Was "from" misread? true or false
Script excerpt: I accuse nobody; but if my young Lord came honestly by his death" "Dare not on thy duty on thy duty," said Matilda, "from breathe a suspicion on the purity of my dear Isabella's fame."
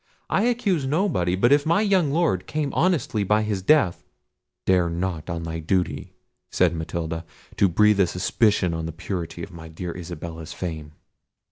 true